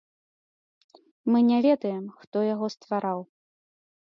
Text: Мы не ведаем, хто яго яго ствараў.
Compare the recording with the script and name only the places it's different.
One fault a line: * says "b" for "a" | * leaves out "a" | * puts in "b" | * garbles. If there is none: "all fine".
* leaves out "яго"